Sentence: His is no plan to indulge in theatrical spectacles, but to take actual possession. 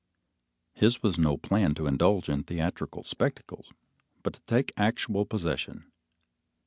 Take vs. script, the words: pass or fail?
fail